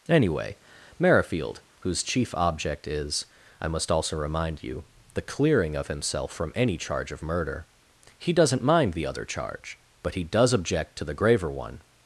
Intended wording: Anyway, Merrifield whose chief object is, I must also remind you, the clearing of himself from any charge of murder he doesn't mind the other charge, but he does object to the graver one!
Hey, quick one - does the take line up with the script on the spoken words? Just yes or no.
yes